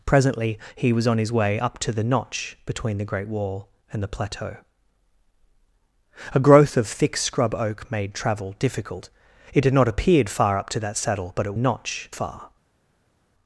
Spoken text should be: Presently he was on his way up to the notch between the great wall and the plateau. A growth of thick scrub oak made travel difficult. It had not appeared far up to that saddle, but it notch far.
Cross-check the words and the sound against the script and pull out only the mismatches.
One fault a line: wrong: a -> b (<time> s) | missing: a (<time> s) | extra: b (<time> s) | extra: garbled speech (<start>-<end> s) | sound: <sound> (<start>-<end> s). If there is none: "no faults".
no faults